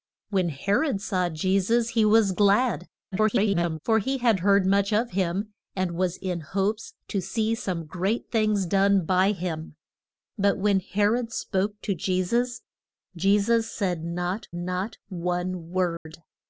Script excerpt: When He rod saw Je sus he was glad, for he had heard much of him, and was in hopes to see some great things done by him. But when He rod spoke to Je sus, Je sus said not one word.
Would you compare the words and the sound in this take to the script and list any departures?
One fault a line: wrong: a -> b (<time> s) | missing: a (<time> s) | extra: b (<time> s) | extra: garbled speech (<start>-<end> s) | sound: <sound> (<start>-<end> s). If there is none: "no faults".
extra: garbled speech (3.1-3.8 s)
extra: not (14.5 s)
sound: dropout (16.0-16.1 s)